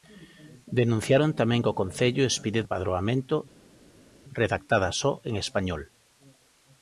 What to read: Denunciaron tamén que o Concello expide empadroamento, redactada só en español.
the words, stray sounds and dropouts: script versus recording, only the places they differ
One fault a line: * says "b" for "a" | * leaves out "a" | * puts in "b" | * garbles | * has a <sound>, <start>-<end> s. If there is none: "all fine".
all fine